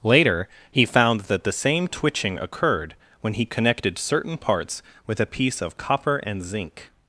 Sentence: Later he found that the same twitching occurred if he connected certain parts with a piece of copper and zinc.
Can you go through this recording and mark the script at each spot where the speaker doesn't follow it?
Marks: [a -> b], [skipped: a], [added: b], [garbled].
Later he found that the same twitching occurred [if -> when] he connected certain parts with a piece of copper and zinc.